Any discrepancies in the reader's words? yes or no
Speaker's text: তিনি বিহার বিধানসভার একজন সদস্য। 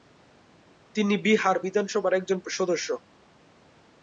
no